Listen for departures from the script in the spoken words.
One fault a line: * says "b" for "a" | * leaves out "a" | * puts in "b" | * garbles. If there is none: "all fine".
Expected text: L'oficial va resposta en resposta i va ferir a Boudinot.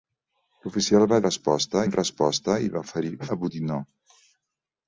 all fine